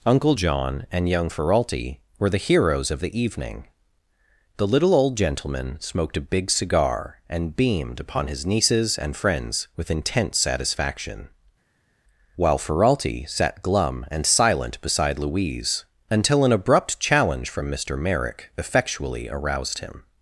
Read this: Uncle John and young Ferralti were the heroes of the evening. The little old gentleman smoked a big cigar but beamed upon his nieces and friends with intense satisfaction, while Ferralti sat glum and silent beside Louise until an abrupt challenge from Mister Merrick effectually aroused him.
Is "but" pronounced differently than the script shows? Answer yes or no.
yes